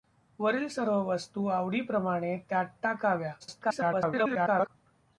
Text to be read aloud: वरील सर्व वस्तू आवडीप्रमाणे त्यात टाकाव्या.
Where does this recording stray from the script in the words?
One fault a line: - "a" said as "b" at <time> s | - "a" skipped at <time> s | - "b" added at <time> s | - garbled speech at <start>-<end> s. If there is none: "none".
- garbled speech at 3.4-4.7 s